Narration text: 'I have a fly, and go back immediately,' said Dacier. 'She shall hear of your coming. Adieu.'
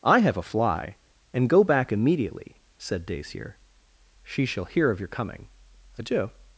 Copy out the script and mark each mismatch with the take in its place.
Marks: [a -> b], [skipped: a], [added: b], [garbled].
'I have a fly, and go back immediately,' said Dacier. 'She shall hear of your coming. Adieu.'